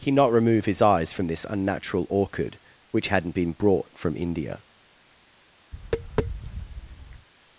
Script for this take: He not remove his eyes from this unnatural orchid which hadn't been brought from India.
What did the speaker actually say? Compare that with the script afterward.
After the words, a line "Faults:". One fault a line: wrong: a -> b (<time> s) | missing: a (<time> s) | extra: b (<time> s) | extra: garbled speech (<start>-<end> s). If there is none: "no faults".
He not remove his eyes from this unnatural orchid which hadn't been brought from India.
Faults:
no faults